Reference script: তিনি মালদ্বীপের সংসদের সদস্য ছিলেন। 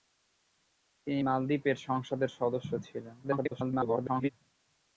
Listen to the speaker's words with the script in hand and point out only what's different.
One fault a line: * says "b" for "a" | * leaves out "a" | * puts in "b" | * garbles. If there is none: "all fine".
* garbles